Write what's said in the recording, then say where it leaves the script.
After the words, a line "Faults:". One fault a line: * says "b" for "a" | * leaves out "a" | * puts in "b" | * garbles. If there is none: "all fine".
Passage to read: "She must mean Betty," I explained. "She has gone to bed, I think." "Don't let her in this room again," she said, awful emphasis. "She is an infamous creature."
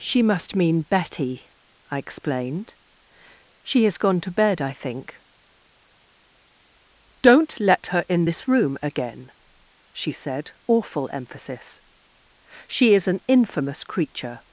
"She must mean Betty," I explained. "She has gone to bed, I think." "Don't let her in this room again," she said, awful emphasis. "She is an infamous creature."
Faults:
all fine